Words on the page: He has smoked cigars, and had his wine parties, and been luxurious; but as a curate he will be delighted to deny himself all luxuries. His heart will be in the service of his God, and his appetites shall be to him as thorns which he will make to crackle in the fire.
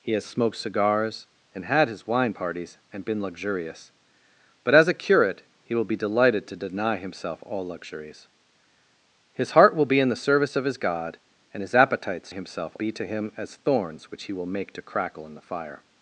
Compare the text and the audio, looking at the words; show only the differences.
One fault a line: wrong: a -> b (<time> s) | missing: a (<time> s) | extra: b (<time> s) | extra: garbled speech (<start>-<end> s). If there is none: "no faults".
wrong: shall -> himself (12.3 s)